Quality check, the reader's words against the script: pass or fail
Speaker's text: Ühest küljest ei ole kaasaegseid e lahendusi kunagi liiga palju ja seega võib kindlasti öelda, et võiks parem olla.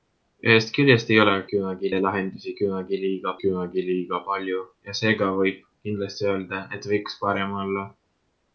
fail